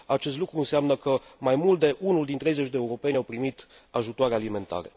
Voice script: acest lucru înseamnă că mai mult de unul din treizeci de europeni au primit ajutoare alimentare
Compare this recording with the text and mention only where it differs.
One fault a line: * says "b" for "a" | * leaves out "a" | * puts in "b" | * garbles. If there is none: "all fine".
all fine